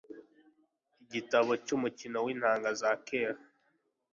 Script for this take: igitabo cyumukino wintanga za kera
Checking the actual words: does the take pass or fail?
pass